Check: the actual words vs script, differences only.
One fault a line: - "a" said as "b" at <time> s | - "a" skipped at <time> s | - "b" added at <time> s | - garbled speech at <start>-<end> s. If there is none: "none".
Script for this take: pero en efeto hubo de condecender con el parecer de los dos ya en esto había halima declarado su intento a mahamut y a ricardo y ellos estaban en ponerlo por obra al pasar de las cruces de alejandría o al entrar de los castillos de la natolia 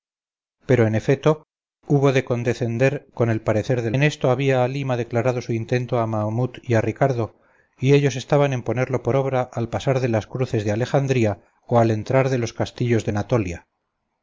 - "los dos ya" skipped at 3.9 s
- "la" skipped at 13.1 s